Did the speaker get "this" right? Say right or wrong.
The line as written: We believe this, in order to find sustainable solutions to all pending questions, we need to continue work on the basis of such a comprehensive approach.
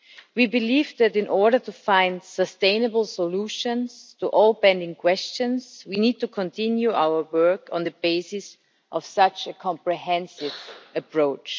wrong